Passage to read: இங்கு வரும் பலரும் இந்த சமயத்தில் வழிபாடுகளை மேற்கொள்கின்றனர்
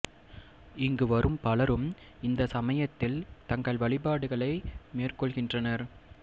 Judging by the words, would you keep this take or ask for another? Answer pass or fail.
fail